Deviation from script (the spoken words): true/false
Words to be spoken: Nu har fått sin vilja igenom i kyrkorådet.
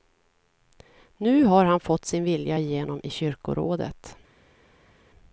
true